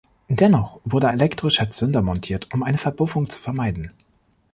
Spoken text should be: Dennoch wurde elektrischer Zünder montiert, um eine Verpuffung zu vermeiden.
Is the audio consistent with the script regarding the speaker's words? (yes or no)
yes